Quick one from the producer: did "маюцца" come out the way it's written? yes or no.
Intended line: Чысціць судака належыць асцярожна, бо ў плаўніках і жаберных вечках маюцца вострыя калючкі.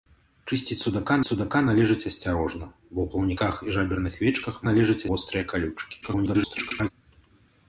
no